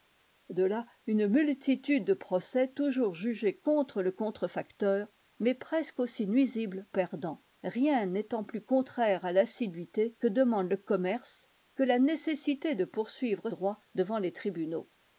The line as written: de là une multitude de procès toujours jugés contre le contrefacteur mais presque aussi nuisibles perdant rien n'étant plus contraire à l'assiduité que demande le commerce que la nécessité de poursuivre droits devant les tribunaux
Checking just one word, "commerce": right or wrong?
right